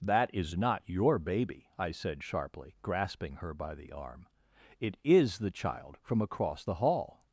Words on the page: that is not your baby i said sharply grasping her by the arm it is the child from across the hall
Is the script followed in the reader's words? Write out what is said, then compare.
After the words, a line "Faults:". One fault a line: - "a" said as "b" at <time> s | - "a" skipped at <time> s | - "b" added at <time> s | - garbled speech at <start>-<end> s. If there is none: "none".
that is not your baby i said sharply grasping her by the arm it is the child from across the hall
Faults:
none